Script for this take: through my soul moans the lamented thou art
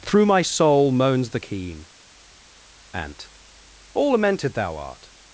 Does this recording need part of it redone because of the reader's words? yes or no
yes